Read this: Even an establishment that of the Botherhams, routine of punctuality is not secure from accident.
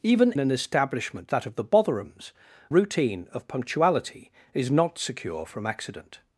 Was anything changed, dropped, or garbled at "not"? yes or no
no